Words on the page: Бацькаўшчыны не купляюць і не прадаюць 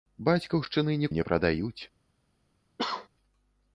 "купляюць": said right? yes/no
no